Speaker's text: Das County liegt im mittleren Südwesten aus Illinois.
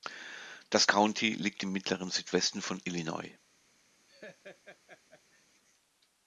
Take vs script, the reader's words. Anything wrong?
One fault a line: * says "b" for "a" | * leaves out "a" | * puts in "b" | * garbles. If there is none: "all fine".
* says "von" for "aus"